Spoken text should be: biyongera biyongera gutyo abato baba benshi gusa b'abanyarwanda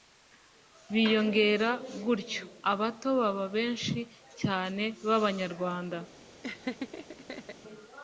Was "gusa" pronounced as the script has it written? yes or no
no